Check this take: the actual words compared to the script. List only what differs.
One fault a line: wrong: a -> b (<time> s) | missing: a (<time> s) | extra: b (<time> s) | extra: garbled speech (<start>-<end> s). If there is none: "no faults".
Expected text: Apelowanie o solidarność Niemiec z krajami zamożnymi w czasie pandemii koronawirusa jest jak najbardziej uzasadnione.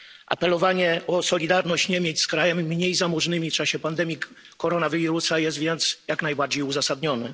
extra: mniej (2.6 s)
extra: więc (5.6 s)